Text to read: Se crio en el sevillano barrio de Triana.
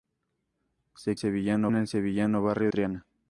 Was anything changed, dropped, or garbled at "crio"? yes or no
yes